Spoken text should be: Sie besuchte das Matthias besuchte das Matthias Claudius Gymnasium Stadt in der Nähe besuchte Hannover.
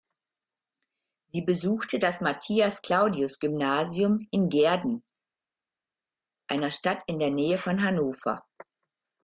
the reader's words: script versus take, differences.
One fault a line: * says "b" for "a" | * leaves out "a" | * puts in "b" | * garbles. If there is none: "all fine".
* says "Claudius Gymnasium in Gehrden einer" for "besuchte das Matthias Claudius Gymnasium"
* says "von" for "besuchte"